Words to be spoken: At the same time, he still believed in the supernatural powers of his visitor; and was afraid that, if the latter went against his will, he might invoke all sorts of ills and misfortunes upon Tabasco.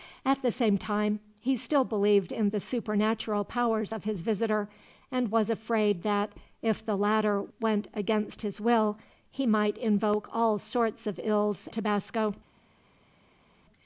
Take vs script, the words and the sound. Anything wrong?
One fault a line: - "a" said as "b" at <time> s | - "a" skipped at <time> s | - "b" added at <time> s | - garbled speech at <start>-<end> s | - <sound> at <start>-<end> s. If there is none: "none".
- "and misfortunes upon" skipped at 11.7 s